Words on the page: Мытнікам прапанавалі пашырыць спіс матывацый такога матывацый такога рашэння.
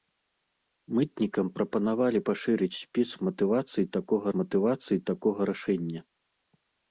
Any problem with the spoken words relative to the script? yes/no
no